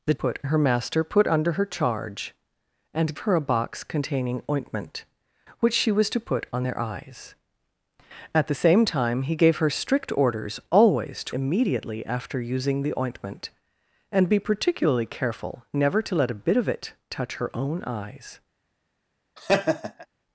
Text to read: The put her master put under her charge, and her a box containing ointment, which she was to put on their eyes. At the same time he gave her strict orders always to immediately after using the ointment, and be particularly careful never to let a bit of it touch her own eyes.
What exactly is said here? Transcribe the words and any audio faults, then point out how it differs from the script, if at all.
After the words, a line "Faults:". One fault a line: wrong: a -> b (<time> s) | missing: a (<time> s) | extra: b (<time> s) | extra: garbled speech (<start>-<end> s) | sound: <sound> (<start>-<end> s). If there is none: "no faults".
The put her master put under her charge, and her a box containing ointment, which she was to put on their eyes. At the same time he gave her strict orders always to immediately after using the ointment, and be particularly careful never to let a bit of it touch her own eyes.
Faults:
sound: laugh (19.4-20.1 s)